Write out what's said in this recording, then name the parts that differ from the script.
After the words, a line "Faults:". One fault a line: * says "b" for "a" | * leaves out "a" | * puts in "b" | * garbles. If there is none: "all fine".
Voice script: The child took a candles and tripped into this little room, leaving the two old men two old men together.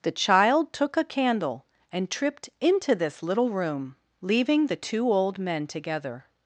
The child took a candle and tripped into this little room, leaving the two old men together.
Faults:
* says "candle" for "candles"
* leaves out "two old men"